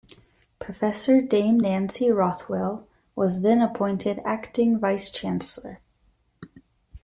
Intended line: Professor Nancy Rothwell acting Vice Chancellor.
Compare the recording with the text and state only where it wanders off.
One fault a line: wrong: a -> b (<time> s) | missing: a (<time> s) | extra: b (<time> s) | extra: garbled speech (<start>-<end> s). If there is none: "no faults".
extra: Dame (1.2 s)
extra: was then appointed (3.2 s)